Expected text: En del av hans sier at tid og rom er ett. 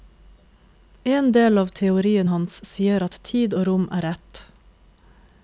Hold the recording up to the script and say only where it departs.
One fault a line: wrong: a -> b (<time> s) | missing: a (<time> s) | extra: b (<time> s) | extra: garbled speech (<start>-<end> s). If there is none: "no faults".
extra: teorien (1.8 s)